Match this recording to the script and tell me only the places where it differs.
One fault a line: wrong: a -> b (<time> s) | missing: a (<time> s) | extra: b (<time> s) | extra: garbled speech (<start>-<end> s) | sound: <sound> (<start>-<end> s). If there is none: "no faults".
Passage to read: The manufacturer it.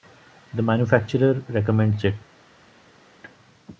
extra: recommends (1.5 s)